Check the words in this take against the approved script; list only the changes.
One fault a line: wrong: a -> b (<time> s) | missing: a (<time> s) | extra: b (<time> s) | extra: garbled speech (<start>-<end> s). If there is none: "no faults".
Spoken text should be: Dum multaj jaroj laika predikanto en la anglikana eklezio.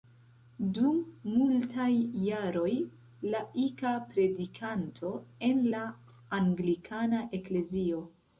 no faults